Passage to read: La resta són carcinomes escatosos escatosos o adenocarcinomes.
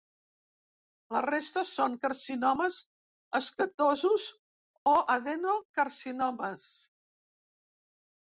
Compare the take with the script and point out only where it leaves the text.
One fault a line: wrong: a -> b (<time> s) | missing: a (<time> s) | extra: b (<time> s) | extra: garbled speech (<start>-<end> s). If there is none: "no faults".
missing: escatosos (4.2 s)